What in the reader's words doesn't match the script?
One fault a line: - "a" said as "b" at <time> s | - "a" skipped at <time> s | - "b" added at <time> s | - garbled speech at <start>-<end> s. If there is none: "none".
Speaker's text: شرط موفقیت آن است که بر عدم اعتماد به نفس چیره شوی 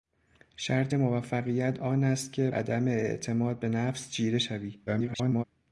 - "بر" skipped at 2.5 s
- garbled speech at 4.9-5.4 s